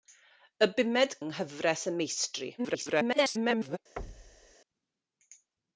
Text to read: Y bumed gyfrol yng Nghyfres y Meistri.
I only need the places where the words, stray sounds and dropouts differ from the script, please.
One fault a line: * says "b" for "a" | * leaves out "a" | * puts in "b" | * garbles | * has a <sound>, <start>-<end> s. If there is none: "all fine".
* leaves out "gyfrol"
* garbles
* has a thud, 4.0-4.6 s